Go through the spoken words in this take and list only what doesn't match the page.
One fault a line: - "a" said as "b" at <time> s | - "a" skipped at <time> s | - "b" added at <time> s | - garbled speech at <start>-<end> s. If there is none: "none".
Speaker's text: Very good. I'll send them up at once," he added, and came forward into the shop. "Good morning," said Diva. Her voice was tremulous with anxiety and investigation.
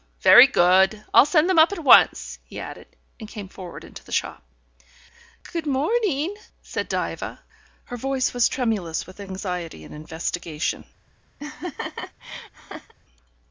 none